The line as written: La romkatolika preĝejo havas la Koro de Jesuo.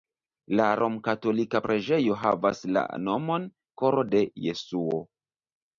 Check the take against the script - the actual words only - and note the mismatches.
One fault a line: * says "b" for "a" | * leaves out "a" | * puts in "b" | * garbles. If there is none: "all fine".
* puts in "nomon"